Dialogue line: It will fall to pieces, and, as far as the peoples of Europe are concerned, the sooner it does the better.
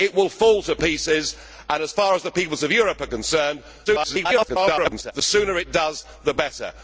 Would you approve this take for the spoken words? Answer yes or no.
no